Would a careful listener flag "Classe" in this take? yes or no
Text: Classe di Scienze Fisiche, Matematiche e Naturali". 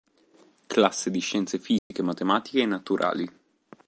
no